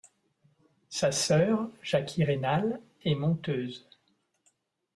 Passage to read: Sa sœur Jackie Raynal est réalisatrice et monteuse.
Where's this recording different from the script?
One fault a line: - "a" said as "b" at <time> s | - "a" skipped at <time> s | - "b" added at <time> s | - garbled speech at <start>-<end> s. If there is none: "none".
- "est réalisatrice" skipped at 2.8 s